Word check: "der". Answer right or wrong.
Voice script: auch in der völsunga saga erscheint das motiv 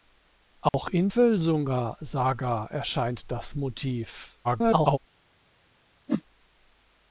wrong